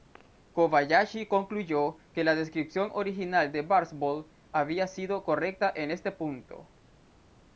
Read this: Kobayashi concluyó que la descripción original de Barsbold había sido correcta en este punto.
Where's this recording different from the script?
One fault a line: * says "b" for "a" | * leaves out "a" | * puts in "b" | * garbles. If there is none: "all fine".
all fine